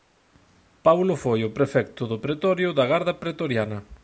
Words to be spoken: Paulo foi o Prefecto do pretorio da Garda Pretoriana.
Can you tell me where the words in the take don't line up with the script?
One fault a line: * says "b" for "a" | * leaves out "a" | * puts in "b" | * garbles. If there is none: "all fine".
all fine